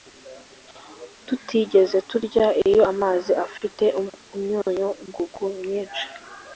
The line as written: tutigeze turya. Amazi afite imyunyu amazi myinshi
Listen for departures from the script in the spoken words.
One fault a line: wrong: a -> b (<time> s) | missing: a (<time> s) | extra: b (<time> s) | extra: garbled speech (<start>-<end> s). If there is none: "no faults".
extra: Iyo (2.7 s)
wrong: amazi -> ngugu (5.1 s)